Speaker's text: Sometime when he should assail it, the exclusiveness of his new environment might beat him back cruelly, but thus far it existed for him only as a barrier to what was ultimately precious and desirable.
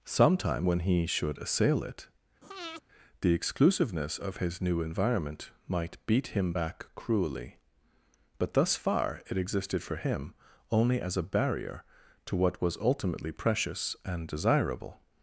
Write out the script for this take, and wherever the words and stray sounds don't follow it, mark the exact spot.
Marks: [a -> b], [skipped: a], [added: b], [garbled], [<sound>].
Sometime when he should assail it, [breath] the exclusiveness of his new environment might beat him back cruelly, but thus far it existed for him only as a barrier to what was ultimately precious and desirable.